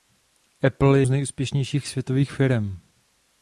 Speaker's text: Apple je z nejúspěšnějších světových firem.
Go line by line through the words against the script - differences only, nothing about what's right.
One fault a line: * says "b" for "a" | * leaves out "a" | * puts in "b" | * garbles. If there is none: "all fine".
all fine